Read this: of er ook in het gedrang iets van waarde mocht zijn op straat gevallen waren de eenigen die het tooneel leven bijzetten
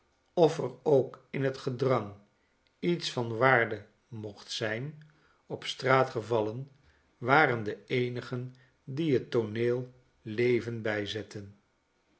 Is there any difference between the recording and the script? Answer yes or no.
no